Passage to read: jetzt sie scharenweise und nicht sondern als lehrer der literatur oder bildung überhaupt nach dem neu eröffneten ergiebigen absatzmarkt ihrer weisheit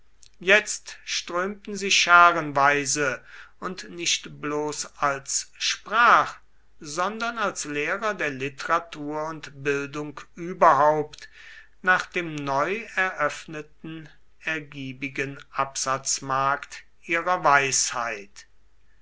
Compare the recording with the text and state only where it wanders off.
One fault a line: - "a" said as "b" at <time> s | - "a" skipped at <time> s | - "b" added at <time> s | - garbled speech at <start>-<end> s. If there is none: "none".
- "strömten" added at 1.1 s
- "bloß als sprach" added at 4.4 s
- "oder" said as "und" at 9.3 s